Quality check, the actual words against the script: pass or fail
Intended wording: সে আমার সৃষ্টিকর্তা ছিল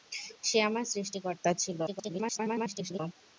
fail